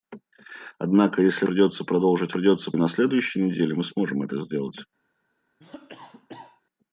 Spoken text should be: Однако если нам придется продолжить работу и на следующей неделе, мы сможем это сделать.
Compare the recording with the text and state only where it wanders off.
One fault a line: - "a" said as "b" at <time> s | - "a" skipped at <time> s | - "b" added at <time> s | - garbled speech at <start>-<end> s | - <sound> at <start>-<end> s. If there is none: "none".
- "нам" skipped at 1.4 s
- "работу" said as "придется" at 2.3 s
- cough at 5.6-6.6 s